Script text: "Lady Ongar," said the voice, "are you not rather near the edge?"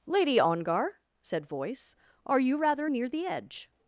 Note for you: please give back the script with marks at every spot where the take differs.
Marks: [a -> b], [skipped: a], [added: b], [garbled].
"Lady Ongar," said [skipped: the] voice, "are you [skipped: not] rather near the edge?"